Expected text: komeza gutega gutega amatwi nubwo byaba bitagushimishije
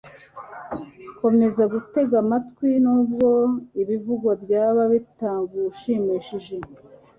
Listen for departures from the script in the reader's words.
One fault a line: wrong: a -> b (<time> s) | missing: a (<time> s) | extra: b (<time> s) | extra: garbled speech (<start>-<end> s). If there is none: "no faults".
missing: gutega (2.1 s)
extra: ibivugwa (3.8 s)